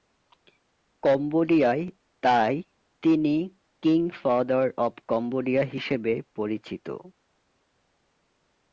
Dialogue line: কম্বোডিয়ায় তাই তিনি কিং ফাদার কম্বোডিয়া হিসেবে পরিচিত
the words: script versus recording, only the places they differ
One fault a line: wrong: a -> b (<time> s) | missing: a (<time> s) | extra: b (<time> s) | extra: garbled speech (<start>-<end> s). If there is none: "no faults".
extra: অব (4.8 s)